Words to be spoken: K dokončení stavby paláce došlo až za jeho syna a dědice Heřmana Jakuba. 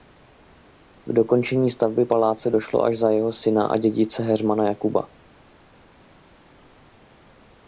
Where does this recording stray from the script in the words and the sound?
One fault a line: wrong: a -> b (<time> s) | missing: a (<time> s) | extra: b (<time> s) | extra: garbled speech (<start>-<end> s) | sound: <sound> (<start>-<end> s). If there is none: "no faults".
no faults